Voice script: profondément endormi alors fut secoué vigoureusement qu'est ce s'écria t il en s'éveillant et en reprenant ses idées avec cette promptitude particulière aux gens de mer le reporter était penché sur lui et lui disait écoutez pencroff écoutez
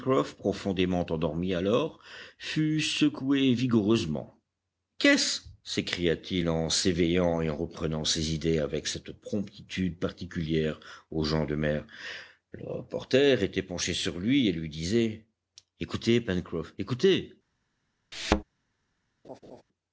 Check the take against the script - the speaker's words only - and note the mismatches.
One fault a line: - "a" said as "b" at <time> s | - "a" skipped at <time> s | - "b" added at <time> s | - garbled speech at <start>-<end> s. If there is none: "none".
none